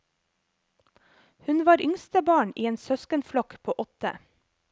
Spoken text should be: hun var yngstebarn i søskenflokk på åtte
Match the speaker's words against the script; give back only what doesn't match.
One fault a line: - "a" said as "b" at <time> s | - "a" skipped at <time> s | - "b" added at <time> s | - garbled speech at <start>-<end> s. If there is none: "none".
- "en" added at 2.6 s